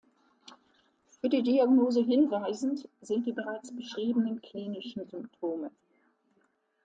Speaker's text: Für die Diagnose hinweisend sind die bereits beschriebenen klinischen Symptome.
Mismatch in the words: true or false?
false